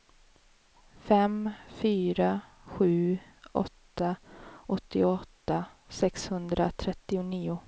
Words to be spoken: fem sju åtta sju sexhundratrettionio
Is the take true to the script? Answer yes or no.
no